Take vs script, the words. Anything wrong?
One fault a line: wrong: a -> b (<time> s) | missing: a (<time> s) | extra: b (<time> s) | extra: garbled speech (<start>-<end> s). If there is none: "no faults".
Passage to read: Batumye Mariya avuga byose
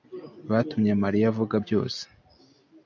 no faults